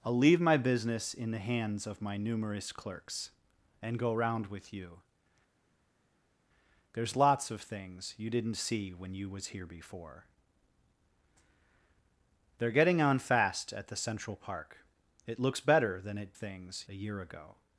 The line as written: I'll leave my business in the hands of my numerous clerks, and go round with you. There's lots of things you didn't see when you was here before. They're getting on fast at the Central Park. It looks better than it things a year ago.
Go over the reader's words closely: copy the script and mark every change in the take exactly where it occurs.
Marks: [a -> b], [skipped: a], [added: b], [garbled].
I'll leave my business in the hands of my numerous clerks, and go round with you. There's lots of things you didn't see when you was here before. They're getting on fast at the Central Park. It looks better than it things a year ago.